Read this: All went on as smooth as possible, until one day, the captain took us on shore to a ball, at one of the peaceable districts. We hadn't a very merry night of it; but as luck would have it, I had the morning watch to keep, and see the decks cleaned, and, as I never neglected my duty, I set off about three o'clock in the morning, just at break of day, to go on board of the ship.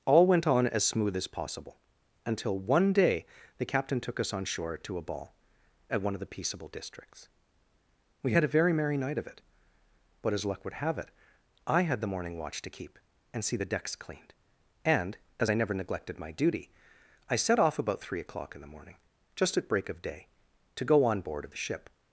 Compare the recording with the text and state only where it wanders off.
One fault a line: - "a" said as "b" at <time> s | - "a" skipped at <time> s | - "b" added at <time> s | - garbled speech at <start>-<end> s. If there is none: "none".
- "hadn't" said as "had" at 8.3 s